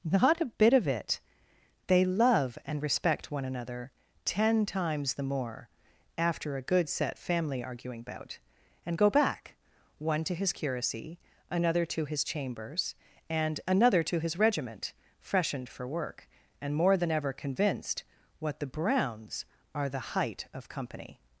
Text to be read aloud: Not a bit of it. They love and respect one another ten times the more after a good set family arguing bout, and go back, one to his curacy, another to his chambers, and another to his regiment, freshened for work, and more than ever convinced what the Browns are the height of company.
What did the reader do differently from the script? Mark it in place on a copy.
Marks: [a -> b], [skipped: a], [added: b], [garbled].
Not a bit of it. They love and respect one another ten times the more after a good set family arguing bout, and go back, one to his curacy, another to his chambers, and another to his regiment, freshened for work, and more than ever convinced what the Browns are the height of company.